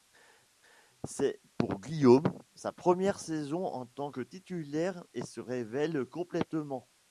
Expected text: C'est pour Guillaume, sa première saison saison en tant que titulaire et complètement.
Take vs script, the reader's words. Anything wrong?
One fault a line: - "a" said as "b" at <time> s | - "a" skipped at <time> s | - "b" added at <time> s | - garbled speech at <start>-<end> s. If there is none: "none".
- "saison" skipped at 3.7 s
- "se révèle" added at 5.2 s